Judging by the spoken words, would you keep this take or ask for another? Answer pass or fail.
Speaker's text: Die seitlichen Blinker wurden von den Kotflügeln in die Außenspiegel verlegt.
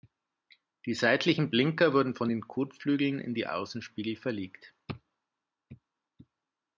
pass